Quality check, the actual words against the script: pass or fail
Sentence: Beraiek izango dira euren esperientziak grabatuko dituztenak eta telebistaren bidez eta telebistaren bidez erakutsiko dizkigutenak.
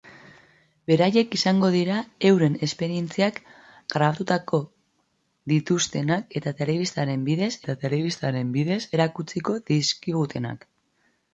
pass